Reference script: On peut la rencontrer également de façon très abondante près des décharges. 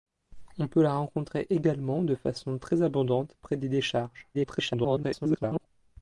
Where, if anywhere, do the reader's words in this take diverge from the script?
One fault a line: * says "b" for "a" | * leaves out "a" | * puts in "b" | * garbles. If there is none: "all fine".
* garbles